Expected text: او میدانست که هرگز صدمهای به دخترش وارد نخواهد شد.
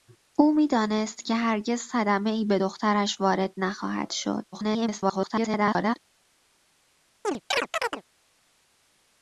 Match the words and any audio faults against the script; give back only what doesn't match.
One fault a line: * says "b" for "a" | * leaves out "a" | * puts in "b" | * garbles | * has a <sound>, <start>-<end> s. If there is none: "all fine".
* garbles
* has a chirp, 7.2-8.0 s